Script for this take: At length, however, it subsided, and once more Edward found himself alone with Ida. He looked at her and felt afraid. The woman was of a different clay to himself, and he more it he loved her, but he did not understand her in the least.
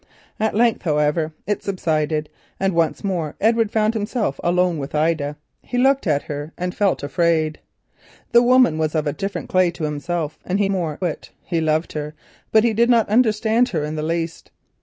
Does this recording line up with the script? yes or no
yes